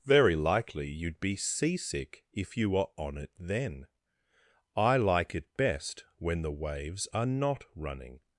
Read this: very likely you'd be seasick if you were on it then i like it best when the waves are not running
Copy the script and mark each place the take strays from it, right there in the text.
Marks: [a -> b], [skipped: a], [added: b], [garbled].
very likely you'd be seasick if you were on it then i like it best when the waves are not running